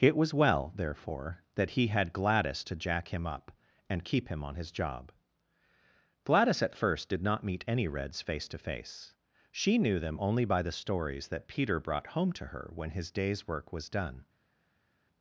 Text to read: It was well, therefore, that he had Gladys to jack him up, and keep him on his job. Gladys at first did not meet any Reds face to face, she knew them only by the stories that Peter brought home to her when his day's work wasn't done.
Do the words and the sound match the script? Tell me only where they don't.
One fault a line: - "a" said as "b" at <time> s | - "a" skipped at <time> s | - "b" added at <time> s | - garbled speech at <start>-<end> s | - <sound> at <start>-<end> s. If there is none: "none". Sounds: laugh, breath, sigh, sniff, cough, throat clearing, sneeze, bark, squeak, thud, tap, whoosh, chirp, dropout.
- "wasn't" said as "was" at 13.7 s